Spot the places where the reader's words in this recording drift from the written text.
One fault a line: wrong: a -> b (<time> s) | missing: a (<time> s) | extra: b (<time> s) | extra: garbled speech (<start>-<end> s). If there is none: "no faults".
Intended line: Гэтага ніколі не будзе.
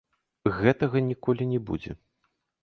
no faults